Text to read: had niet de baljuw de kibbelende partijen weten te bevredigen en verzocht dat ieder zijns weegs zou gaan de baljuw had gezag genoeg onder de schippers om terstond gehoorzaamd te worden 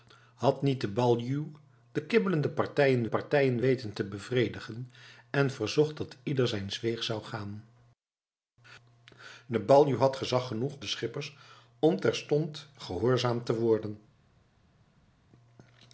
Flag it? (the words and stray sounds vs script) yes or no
yes